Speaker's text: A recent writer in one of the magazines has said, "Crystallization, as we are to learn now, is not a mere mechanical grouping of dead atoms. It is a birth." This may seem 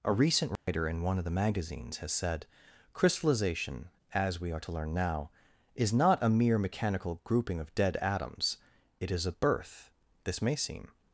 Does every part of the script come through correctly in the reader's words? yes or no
yes